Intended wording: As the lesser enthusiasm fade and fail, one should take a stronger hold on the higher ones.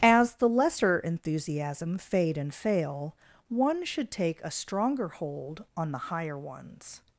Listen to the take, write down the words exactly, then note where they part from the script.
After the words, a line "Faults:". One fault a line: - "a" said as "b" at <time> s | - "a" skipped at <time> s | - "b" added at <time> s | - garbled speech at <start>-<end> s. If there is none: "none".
As the lesser enthusiasm fade and fail, one should take a stronger hold on the higher ones.
Faults:
none